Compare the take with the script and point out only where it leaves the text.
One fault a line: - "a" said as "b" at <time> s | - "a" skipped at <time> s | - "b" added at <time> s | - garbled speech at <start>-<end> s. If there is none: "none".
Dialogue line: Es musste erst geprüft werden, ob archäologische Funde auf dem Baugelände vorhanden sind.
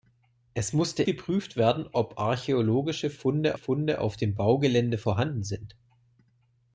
- "erst" skipped at 1.0 s
- "Funde" added at 3.5 s